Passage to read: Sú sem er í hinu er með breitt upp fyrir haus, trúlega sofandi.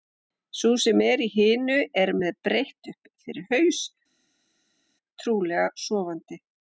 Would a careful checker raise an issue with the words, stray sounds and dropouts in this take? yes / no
no